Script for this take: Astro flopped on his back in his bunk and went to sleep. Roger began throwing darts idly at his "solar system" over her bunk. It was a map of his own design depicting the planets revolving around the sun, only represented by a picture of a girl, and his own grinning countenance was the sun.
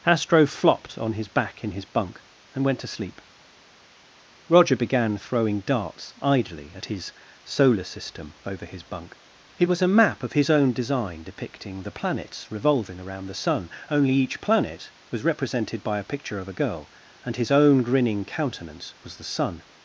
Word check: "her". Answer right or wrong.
wrong